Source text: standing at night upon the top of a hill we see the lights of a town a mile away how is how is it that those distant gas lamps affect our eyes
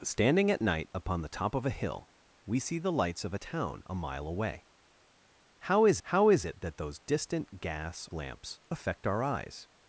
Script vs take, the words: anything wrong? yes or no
no